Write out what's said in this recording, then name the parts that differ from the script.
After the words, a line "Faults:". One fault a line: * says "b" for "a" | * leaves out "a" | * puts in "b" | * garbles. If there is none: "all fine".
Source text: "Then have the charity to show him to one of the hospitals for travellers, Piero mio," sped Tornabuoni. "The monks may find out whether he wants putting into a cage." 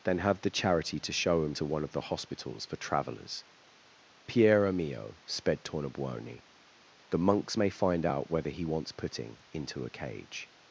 "Then have the charity to show him to one of the hospitals for travellers, Piero mio," sped Tornabuoni. "The monks may find out whether he wants putting into a cage."
Faults:
all fine